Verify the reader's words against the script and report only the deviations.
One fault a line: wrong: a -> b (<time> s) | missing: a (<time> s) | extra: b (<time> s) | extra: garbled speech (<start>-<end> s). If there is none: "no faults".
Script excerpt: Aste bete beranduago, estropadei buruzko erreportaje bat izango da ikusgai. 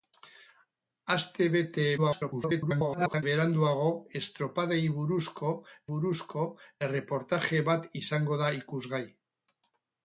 extra: garbled speech (2.0-3.2 s)
extra: buruzko (5.9 s)